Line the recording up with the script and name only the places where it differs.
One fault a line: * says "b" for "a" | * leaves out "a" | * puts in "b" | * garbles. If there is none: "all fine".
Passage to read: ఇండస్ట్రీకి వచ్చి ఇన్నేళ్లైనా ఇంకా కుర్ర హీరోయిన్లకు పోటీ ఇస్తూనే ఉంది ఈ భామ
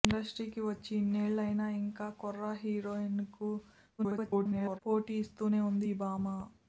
* garbles